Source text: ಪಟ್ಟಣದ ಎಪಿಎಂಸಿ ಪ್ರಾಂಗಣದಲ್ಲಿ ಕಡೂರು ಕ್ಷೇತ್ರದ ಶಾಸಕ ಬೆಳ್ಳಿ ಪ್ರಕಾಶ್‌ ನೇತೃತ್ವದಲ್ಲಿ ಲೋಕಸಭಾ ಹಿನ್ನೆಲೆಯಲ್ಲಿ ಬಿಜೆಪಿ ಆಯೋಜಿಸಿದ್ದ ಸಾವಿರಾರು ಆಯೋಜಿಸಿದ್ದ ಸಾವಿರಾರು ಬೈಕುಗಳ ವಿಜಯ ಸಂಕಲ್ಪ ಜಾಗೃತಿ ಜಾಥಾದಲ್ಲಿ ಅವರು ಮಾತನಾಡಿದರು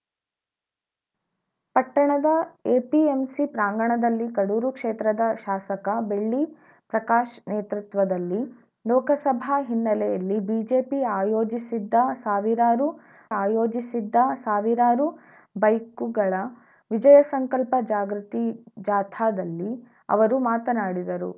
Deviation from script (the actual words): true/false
false